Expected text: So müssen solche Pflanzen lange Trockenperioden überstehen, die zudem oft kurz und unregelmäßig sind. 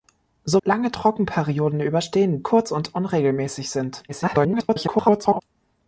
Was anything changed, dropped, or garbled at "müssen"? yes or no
yes